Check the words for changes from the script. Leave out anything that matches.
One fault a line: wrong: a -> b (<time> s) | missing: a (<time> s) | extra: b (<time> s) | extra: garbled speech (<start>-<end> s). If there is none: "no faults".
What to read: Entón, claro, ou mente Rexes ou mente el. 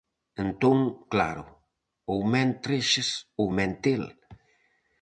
no faults